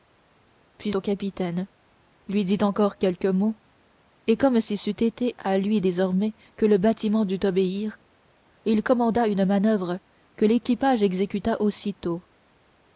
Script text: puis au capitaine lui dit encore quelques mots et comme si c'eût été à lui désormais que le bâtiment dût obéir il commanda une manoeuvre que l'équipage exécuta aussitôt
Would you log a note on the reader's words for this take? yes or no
no